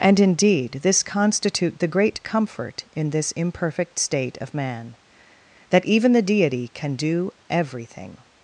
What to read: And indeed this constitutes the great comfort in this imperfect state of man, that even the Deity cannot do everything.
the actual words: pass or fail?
fail